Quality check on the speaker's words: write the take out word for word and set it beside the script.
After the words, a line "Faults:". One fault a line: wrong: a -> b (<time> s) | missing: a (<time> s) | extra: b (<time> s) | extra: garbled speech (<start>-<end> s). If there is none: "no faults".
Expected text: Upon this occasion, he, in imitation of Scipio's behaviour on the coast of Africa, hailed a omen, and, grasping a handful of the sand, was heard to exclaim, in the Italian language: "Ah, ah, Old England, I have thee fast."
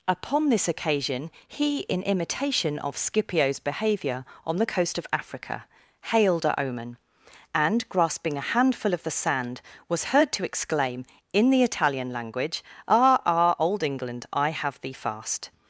Upon this occasion, he, in imitation of Scipio's behaviour on the coast of Africa, hailed a omen, and, grasping a handful of the sand, was heard to exclaim, in the Italian language: "Ah, ah, Old England, I have thee fast."
Faults:
no faults